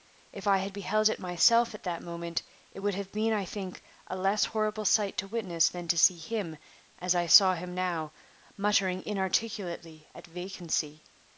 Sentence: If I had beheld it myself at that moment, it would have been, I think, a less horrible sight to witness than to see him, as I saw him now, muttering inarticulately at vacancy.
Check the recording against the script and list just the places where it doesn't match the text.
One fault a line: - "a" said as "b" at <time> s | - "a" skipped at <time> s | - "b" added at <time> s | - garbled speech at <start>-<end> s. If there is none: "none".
none